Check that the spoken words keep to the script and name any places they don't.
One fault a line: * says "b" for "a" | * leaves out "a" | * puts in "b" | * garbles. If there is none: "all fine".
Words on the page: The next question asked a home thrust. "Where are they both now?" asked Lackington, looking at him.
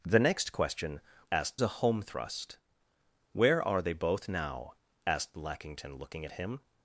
all fine